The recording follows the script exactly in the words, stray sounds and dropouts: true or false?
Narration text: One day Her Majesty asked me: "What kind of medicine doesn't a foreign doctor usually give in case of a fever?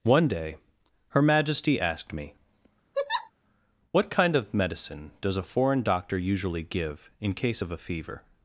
false